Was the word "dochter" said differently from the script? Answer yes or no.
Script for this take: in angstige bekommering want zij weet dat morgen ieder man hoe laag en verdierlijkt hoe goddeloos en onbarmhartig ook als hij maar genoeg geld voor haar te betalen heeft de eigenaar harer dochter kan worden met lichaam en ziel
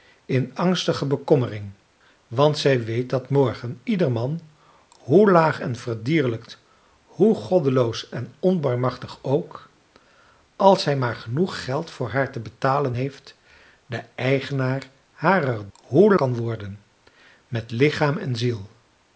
yes